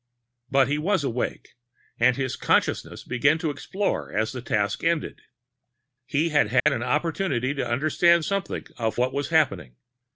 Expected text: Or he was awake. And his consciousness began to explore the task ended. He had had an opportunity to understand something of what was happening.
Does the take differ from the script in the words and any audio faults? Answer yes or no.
yes